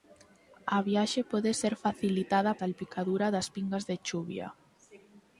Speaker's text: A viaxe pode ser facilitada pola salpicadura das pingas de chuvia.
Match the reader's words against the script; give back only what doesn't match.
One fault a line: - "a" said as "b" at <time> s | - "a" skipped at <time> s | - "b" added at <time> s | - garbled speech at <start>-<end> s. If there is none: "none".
- "pola" skipped at 2.5 s